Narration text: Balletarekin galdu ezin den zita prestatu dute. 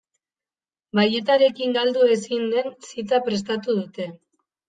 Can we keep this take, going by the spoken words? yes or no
yes